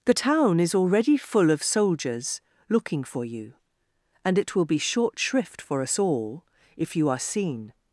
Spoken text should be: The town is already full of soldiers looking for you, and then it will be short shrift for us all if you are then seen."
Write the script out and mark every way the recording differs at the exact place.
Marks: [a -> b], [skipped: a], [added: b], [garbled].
The town is already full of soldiers looking for you, and [skipped: then] it will be short shrift for us all if you are [skipped: then] seen."